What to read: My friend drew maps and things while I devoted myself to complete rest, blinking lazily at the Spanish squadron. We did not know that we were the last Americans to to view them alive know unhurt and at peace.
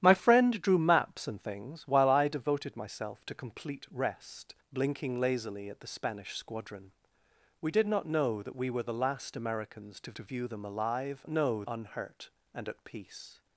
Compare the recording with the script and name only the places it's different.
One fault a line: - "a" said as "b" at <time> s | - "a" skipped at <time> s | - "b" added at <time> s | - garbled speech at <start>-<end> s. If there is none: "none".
none